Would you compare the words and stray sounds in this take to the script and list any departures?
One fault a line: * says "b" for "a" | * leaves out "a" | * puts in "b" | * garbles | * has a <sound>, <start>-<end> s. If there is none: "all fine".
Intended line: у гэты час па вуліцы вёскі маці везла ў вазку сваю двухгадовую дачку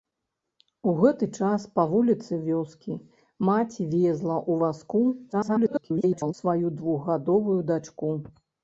* garbles